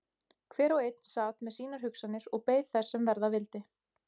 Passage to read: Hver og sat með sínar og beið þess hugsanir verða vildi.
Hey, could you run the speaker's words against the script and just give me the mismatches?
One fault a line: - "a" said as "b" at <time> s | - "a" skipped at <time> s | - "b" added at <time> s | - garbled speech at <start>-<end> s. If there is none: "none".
- "einn" added at 0.8 s
- "hugsanir" added at 1.9 s
- "hugsanir" said as "sem" at 3.0 s